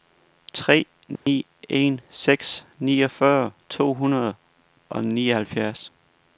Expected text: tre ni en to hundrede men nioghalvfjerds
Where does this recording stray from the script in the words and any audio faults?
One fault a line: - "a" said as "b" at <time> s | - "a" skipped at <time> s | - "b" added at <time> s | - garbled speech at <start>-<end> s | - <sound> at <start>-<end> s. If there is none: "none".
- dropout at 1.2-1.3 s
- "seks niogfyrre" added at 2.1 s
- "men" said as "og" at 4.9 s